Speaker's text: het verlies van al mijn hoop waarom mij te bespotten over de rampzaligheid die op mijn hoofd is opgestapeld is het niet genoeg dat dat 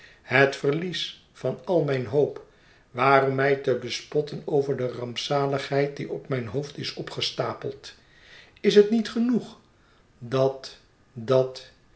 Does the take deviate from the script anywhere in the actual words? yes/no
no